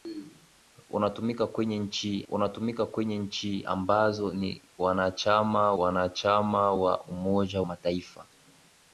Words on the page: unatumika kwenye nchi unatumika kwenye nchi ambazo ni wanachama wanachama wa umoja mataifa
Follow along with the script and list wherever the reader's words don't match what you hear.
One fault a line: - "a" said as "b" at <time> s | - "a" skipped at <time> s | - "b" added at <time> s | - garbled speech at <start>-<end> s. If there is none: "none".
none